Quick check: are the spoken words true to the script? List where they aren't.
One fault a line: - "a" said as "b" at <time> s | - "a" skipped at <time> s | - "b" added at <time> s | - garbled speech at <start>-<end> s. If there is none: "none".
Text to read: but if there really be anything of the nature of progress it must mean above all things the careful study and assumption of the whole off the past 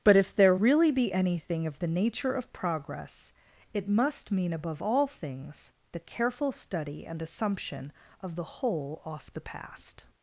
none